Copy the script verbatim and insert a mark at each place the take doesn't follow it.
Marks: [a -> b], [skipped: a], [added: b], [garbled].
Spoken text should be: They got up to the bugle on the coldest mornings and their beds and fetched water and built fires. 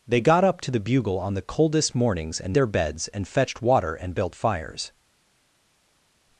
They got up to the bugle on the coldest mornings and their beds and fetched water and built fires.